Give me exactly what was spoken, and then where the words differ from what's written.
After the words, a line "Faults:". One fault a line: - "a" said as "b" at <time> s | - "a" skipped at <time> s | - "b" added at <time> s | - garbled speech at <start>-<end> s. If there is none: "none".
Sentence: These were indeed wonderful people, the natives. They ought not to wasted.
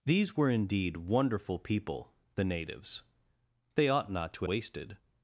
These were indeed wonderful people, the natives. They ought not to wasted.
Faults:
none